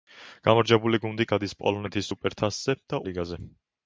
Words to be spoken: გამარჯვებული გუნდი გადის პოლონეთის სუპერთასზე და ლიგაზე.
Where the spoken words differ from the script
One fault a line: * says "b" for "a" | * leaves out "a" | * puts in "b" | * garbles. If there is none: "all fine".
all fine